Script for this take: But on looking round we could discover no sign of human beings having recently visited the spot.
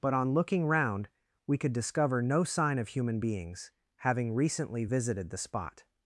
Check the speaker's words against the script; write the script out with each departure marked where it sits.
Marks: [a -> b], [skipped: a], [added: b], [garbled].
But on looking round we could discover no sign of human beings having recently visited the spot.